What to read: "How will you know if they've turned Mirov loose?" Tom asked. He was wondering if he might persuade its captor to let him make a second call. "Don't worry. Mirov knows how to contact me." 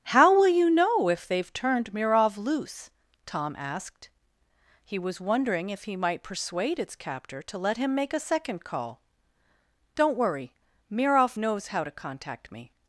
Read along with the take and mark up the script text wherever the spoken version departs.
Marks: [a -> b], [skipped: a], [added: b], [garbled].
"How will you know if they've turned Mirov loose?" Tom asked. He was wondering if he might persuade its captor to let him make a second call. "Don't worry. Mirov knows how to contact me."